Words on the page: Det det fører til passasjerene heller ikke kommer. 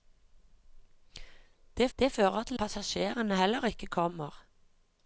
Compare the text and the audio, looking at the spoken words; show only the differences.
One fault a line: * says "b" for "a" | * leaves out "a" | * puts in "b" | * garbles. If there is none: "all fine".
all fine